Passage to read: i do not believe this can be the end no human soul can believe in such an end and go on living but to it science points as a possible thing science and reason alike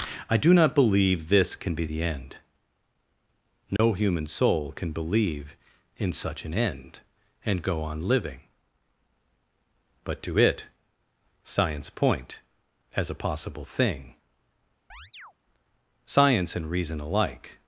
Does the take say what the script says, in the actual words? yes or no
no